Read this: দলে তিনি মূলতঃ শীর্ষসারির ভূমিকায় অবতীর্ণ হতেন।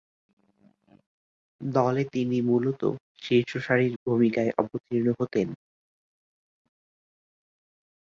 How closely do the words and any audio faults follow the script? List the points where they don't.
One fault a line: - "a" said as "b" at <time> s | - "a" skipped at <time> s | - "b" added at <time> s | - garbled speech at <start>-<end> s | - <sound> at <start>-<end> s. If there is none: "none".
none